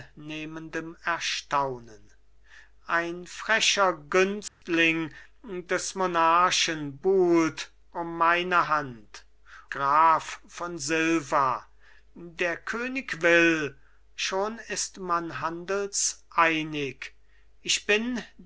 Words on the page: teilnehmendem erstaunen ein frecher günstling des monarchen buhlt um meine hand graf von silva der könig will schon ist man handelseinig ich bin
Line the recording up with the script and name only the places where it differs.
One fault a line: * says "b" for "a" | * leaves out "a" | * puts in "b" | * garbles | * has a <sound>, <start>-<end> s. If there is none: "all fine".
* has a dropout, 4.5-4.6 s